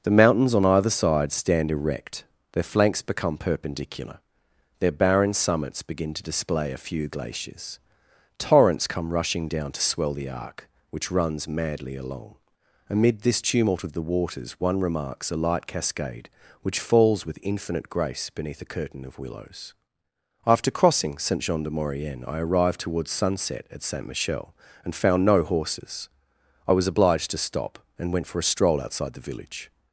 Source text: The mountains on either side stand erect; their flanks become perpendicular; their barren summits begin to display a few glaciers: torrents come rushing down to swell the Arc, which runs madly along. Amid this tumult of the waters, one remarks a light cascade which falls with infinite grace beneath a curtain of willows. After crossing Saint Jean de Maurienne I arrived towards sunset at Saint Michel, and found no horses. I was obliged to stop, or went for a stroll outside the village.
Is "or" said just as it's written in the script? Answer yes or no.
no